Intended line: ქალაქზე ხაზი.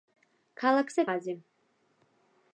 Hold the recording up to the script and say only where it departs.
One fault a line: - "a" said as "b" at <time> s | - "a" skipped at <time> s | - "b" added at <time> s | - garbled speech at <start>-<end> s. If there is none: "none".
none